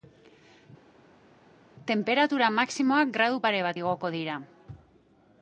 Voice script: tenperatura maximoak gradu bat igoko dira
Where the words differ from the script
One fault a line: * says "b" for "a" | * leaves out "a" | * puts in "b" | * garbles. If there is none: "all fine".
* puts in "pare"